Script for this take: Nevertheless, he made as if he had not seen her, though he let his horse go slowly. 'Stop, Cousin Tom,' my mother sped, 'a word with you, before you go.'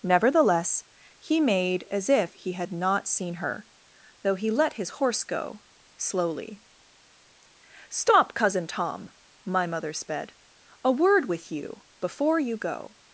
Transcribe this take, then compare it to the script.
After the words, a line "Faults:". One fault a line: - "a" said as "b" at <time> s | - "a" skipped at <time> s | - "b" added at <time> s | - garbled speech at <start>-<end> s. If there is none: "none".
Nevertheless, he made as if he had not seen her, though he let his horse go slowly. 'Stop, Cousin Tom,' my mother sped, 'a word with you, before you go.'
Faults:
none